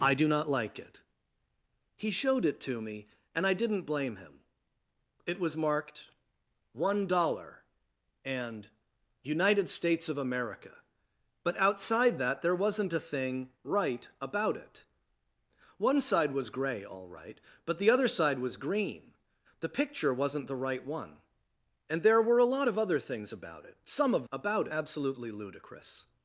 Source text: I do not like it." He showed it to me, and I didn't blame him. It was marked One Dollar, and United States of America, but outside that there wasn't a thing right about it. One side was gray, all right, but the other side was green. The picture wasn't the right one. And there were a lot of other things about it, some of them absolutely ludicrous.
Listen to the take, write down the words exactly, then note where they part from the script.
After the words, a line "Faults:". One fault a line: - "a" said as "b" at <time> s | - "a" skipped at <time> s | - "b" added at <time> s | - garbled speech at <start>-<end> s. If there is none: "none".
I do not like it." He showed it to me, and I didn't blame him. It was marked One Dollar, and United States of America, but outside that there wasn't a thing right about it. One side was gray, all right, but the other side was green. The picture wasn't the right one. And there were a lot of other things about it, some of about absolutely ludicrous.
Faults:
- "them" said as "about" at 24.3 s